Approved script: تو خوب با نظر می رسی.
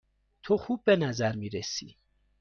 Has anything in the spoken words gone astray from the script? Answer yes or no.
yes